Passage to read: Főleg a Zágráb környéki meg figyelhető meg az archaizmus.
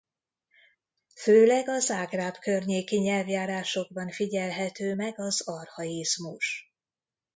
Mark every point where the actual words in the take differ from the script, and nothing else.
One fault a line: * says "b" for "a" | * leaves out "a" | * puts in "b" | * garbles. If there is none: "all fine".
* says "nyelvjárásokban" for "meg"